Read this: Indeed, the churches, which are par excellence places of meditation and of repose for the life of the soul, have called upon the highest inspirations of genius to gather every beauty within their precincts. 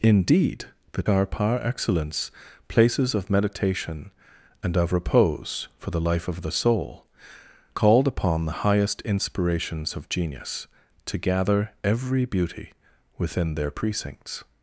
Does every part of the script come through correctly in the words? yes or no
no